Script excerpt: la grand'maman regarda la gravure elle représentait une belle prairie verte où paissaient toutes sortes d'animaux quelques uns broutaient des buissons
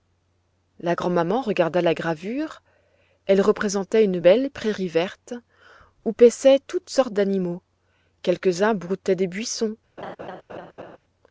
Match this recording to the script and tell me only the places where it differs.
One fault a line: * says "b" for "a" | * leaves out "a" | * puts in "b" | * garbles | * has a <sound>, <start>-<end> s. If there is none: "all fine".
* has a laugh, 10.0-11.0 s